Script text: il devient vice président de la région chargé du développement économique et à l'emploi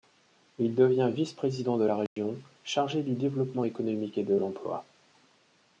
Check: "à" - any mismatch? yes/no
yes